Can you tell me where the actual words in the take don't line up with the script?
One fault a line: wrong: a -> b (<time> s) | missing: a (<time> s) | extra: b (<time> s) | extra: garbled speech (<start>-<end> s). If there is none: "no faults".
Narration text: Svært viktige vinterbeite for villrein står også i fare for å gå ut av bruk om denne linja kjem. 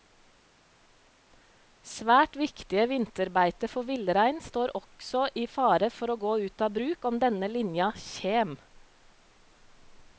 no faults